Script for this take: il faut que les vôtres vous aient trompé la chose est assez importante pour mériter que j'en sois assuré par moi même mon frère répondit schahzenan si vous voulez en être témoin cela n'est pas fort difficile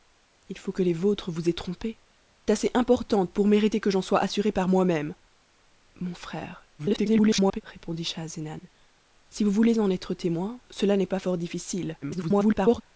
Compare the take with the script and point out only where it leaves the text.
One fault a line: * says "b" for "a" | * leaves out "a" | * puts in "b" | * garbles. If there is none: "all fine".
* leaves out "la chose est"
* garbles
* garbles